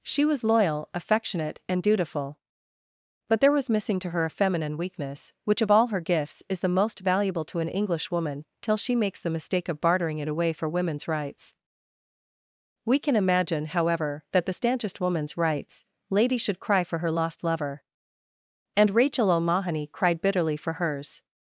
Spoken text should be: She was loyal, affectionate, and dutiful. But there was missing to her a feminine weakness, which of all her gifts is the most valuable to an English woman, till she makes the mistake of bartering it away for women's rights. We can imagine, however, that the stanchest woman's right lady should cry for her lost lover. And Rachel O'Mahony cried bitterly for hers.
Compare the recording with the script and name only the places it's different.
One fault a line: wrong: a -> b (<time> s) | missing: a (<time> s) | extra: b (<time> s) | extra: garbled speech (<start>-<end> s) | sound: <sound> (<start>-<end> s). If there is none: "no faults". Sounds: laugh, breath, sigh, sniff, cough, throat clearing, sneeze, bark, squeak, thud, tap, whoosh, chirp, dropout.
wrong: right -> rights (15.4 s)